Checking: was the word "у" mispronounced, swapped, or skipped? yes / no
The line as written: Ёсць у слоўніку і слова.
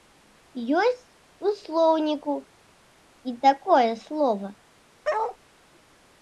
no